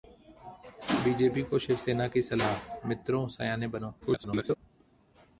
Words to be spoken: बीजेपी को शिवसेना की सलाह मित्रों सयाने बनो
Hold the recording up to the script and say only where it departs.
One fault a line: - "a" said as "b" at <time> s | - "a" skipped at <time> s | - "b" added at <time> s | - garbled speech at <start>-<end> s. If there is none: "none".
- garbled speech at 4.0-4.6 s